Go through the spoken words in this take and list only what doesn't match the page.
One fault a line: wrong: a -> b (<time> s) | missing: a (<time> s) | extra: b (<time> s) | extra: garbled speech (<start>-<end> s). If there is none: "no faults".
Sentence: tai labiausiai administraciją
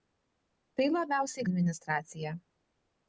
no faults